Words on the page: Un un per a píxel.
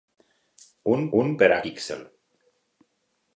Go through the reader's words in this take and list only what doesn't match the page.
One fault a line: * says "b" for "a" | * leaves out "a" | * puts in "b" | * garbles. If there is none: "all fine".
all fine